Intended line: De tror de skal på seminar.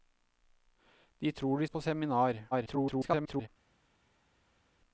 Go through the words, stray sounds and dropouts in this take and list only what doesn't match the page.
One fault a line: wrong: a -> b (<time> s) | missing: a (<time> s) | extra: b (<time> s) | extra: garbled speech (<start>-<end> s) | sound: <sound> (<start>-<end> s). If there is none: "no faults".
missing: skal (1.7 s)
extra: garbled speech (2.5-3.5 s)